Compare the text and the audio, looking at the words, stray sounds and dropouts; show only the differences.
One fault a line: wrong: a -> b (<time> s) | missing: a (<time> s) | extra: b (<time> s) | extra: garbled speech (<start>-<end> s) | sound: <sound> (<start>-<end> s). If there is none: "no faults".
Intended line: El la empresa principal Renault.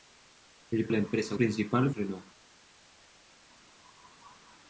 no faults